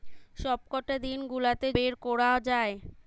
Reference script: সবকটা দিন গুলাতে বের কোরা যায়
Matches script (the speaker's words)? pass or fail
pass